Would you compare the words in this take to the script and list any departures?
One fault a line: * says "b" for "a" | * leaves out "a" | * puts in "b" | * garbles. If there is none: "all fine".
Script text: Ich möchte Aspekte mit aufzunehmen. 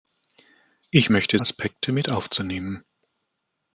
all fine